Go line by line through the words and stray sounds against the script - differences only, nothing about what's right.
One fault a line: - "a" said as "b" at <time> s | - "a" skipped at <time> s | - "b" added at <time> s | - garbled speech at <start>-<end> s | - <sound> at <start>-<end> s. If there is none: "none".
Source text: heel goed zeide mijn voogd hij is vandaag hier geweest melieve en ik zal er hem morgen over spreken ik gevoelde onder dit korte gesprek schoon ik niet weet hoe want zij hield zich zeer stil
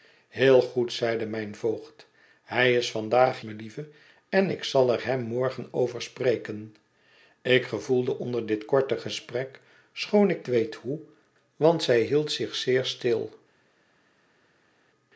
- "hier geweest" skipped at 3.4 s
- "niet" skipped at 10.5 s